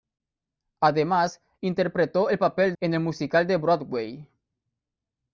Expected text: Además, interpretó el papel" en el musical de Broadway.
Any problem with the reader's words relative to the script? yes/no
no